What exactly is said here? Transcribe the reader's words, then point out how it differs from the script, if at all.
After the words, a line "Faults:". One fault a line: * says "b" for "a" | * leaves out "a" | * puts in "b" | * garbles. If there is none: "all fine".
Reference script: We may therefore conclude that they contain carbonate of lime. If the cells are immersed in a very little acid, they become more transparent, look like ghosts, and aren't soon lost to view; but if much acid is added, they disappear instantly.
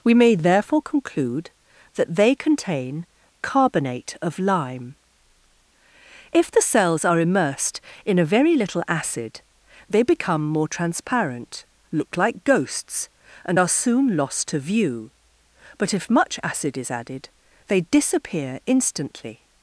We may therefore conclude that they contain carbonate of lime. If the cells are immersed in a very little acid, they become more transparent, look like ghosts, and are soon lost to view; but if much acid is added, they disappear instantly.
Faults:
* says "are" for "aren't"